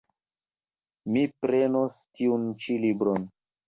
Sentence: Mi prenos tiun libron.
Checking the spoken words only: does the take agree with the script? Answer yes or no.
no